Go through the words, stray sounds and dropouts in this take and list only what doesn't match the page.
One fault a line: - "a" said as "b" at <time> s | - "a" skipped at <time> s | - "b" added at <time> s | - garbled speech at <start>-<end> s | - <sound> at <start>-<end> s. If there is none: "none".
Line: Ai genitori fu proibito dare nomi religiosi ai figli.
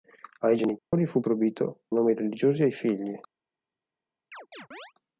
- dropout at 0.8-0.9 s
- "dare" skipped at 1.9 s
- chirp at 4.3-4.9 s